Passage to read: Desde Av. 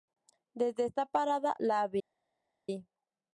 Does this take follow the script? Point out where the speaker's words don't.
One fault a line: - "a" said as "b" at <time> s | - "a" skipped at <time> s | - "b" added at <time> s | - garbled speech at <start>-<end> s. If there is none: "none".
- "esta parada la" added at 0.8 s